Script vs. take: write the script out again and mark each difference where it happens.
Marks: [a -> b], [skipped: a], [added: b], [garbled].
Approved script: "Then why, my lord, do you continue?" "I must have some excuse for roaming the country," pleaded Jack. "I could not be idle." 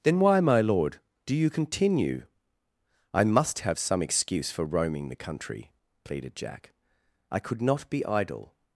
"Then why, my lord, do you continue?" "I must have some excuse for roaming the country," pleaded Jack. "I could not be idle."